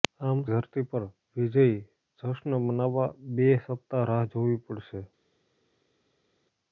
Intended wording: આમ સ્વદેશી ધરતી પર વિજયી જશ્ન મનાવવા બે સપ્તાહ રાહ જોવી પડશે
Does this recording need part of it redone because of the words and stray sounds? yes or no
yes